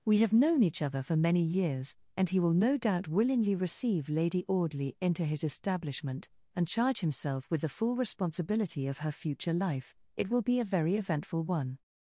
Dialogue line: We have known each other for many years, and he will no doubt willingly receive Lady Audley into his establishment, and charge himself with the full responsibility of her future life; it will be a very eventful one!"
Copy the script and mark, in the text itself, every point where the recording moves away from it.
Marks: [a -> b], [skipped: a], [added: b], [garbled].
We have known each other for many years, and he will no doubt willingly receive Lady Audley into his establishment, and charge himself with the full responsibility of her future life; it will be a very eventful one!"